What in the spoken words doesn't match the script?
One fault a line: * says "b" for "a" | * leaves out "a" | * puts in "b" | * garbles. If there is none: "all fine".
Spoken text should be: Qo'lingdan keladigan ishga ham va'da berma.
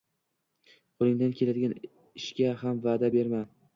all fine